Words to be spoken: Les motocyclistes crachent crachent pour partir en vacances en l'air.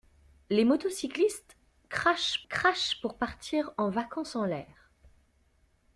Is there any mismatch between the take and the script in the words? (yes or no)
no